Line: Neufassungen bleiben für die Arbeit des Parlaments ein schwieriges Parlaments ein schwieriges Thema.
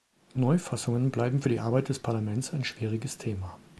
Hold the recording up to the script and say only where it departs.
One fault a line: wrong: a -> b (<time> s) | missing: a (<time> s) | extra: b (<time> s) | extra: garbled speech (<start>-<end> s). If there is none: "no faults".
missing: Parlaments ein schwieriges (3.2 s)